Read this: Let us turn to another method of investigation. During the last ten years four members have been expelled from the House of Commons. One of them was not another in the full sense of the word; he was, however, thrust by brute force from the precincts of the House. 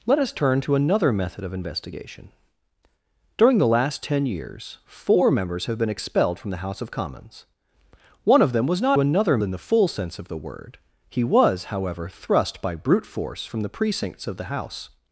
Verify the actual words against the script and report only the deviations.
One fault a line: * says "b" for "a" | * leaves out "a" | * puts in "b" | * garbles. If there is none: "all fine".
all fine